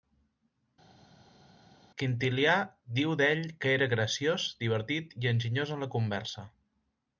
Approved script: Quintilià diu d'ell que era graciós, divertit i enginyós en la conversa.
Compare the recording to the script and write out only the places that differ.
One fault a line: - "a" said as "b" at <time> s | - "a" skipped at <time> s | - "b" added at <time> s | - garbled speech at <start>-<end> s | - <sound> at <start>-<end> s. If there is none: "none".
none